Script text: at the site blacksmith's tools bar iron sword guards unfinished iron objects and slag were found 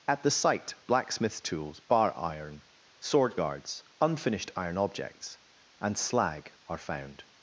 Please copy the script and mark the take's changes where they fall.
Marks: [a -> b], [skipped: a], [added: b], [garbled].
at the site blacksmith's tools bar iron sword guards unfinished iron objects and slag [were -> are] found